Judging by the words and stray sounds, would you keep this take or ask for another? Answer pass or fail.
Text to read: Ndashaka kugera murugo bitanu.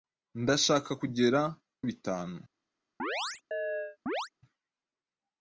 fail